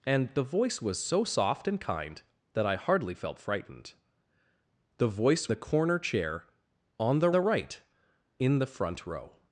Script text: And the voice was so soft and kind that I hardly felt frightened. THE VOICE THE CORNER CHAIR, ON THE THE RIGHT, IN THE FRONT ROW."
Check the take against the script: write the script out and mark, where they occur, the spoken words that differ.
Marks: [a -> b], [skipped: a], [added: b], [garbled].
And the voice was so soft and kind that I hardly felt frightened. THE VOICE THE CORNER CHAIR, ON THE THE RIGHT, IN THE FRONT ROW."